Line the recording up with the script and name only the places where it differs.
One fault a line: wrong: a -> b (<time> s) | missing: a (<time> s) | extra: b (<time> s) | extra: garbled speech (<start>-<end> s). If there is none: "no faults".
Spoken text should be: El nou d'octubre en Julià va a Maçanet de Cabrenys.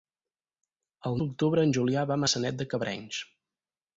missing: nou (1.2 s)